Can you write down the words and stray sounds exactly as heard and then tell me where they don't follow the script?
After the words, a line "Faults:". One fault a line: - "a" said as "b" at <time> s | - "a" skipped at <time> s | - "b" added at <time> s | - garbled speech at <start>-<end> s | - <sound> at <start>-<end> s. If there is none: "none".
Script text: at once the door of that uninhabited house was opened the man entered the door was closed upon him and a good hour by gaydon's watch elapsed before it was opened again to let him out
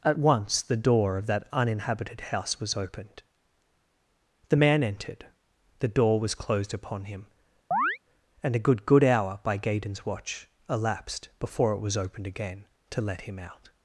at once the door of that uninhabited house was opened the man entered the door was closed upon him and a good good hour by gaydon's watch elapsed before it was opened again to let him out
Faults:
- chirp at 7.7-8.0 s
- "good" added at 8.8 s